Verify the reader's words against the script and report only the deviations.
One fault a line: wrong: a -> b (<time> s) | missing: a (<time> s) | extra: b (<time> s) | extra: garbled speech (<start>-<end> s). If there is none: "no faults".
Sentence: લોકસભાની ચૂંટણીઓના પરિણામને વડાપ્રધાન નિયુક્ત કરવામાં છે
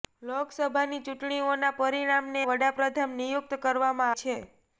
no faults